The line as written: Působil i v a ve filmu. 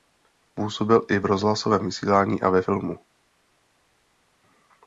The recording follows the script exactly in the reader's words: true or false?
false